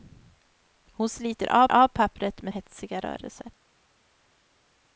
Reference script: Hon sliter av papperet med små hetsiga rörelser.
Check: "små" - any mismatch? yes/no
yes